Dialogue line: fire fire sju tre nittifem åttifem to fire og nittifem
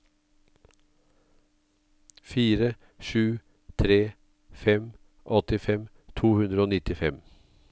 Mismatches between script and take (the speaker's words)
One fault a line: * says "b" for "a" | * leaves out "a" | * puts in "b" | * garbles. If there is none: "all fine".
* leaves out "fire"
* says "fem" for "nittifem"
* says "hundre" for "fire"